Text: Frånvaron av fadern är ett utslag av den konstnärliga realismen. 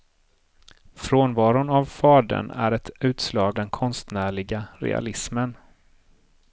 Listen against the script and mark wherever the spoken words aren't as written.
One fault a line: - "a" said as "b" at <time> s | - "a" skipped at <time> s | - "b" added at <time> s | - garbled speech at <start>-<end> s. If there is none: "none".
- "av" skipped at 3.6 s